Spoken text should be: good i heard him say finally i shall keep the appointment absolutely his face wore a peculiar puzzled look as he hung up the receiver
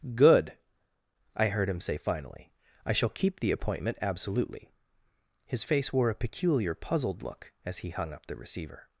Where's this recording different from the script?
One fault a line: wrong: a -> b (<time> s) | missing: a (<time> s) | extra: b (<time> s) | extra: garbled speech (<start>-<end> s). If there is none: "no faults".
no faults